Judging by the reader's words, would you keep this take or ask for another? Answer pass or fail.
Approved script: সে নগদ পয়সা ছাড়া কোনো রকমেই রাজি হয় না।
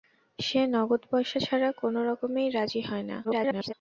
fail